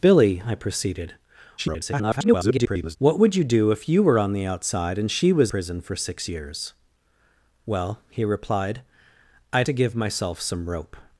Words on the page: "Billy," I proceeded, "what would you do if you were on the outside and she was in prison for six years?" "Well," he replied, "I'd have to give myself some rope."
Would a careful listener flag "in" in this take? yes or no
yes